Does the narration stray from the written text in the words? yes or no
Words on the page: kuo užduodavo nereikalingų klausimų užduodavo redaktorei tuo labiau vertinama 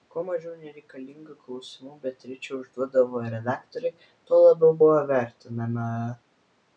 yes